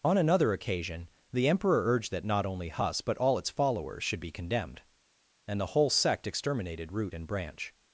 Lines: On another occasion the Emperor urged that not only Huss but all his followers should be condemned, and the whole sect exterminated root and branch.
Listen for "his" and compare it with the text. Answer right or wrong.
wrong